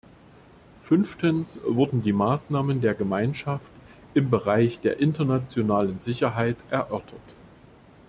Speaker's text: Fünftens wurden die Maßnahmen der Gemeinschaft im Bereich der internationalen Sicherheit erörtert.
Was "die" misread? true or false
false